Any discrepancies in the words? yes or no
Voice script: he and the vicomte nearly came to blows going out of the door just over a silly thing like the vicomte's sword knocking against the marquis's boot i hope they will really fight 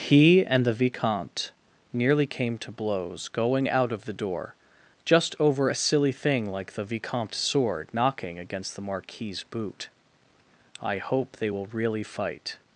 no